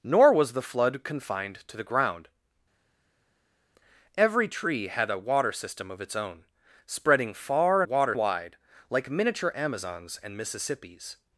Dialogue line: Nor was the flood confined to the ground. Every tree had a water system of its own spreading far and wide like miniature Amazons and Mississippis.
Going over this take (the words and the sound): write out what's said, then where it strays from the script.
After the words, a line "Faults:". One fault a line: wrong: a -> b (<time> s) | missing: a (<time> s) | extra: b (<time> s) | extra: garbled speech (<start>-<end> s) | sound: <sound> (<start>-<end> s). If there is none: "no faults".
Nor was the flood confined to the ground. Every tree had a water system of its own spreading far water wide like miniature Amazons and Mississippis.
Faults:
wrong: and -> water (7.8 s)